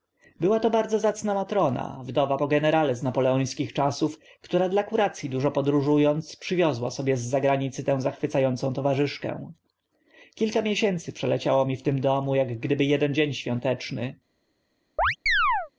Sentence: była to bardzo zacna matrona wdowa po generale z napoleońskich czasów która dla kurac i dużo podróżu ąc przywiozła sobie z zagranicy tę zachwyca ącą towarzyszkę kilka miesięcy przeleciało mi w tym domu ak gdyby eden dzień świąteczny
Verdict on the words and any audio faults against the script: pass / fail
fail